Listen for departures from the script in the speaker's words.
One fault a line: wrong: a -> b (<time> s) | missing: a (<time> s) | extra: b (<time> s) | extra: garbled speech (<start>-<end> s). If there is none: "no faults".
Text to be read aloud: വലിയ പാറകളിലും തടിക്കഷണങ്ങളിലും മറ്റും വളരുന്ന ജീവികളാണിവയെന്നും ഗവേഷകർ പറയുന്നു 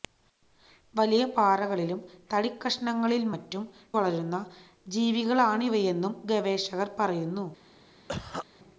no faults